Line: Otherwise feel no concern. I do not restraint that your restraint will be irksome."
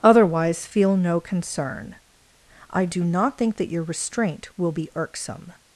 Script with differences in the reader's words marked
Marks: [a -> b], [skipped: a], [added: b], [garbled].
Otherwise feel no concern. I do not [restraint -> think] that your restraint will be irksome."